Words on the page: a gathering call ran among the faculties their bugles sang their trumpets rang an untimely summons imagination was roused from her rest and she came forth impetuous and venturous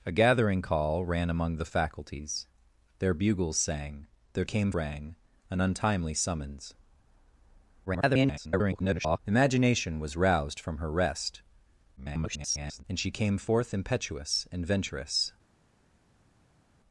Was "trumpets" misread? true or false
true